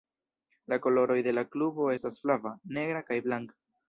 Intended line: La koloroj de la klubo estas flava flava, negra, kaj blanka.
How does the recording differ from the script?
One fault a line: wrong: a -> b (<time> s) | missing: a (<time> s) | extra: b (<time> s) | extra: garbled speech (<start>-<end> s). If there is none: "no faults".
missing: flava (2.5 s)